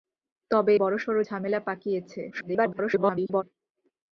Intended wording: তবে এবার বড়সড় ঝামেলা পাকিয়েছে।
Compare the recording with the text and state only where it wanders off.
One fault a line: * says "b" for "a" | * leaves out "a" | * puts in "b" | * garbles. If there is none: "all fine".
* leaves out "এবার"
* garbles